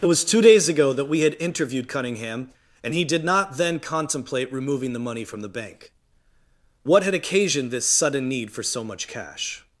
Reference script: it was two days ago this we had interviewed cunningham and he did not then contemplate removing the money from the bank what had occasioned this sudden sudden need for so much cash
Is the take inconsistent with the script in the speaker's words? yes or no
yes